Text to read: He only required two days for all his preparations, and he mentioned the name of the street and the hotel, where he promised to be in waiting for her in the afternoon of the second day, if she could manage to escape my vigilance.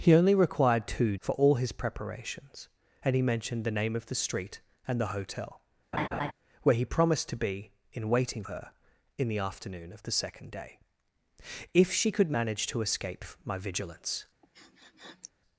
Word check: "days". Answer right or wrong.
wrong